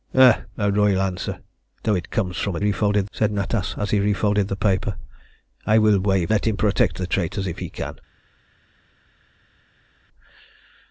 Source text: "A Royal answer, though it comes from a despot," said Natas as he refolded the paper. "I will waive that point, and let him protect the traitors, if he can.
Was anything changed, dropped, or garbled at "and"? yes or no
yes